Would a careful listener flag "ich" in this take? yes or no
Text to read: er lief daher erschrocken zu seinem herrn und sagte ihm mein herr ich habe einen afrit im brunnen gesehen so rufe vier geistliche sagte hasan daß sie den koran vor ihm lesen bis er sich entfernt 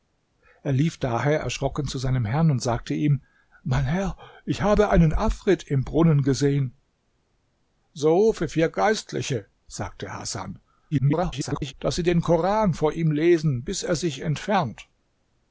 no